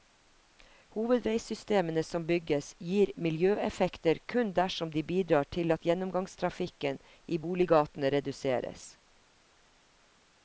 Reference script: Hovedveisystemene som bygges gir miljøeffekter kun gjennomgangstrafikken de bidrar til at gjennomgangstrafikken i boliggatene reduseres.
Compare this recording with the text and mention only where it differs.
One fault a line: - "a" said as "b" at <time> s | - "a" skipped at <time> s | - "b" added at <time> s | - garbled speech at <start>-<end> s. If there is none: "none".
- "gjennomgangstrafikken" said as "dersom" at 4.6 s